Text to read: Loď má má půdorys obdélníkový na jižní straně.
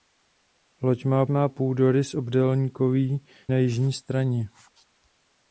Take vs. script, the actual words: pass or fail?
pass